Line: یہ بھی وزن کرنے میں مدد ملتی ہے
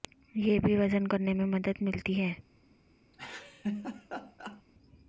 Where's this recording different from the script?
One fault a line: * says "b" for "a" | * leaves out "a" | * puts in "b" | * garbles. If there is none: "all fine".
all fine